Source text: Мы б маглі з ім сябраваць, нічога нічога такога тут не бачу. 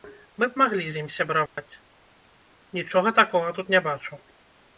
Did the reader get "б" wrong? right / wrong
right